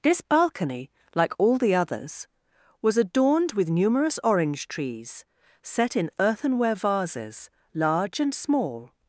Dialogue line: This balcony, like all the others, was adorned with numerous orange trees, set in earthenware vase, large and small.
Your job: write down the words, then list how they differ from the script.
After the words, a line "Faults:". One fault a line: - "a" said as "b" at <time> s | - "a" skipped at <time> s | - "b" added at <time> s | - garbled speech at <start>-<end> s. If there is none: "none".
This balcony, like all the others, was adorned with numerous orange trees, set in earthenware vases, large and small.
Faults:
- "vase" said as "vases" at 6.7 s